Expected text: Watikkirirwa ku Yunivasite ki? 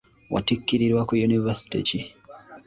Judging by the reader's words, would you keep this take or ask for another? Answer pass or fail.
pass